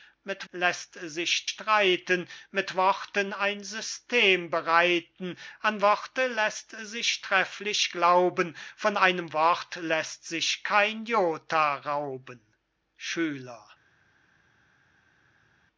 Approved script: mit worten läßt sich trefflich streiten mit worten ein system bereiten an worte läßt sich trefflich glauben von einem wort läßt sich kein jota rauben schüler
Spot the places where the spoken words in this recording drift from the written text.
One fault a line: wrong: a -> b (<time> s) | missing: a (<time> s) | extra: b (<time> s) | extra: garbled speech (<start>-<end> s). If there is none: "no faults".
missing: worten (0.5 s)
missing: trefflich (1.5 s)